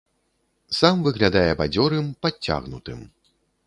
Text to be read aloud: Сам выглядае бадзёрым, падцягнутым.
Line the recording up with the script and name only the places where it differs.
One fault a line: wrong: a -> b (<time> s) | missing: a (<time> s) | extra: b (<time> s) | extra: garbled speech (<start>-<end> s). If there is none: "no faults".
no faults